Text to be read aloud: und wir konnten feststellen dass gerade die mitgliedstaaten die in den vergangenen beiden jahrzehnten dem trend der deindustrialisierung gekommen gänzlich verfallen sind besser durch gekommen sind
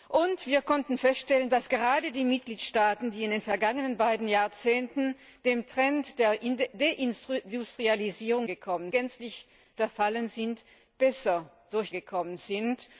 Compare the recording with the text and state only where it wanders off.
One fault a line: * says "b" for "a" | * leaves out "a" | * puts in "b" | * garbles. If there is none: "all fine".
all fine